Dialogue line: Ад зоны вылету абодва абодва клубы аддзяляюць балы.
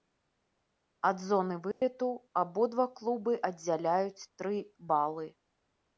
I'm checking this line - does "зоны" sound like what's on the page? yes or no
yes